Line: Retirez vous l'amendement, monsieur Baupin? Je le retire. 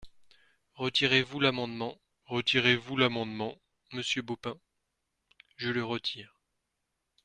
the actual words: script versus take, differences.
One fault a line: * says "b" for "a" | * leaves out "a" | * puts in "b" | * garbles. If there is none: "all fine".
* puts in "retirez vous l'amendement"